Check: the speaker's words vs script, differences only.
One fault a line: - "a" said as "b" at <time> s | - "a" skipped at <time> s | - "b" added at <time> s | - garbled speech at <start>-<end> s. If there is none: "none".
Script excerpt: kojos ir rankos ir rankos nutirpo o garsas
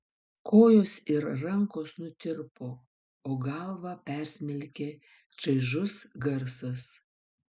- "ir rankos nutirpo o" said as "nutirpo o galvą persmelkė čaižus" at 2.0 s